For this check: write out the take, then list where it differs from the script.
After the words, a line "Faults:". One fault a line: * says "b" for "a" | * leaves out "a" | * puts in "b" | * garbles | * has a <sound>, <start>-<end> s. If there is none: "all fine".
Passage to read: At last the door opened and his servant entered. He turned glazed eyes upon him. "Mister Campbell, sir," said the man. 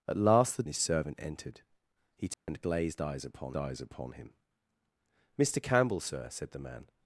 At last the his servant entered. He turned glazed eyes upon eyes upon him. "Mister Campbell, sir," said the man.
Faults:
* leaves out "door opened and"
* has a dropout, 2.3-2.5 s
* puts in "eyes upon"